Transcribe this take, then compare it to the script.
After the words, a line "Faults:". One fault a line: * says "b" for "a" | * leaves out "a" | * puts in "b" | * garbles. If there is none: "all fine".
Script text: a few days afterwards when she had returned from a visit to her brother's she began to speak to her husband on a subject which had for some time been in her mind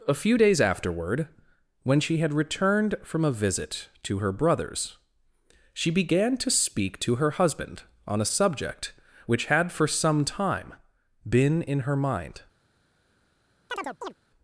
a few days afterward when she had returned from a visit to her brother's she began to speak to her husband on a subject which had for some time been in her mind
Faults:
* says "afterward" for "afterwards"